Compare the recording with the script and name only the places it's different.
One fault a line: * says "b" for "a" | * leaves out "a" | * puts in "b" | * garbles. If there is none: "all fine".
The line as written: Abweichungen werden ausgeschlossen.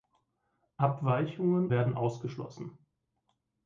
all fine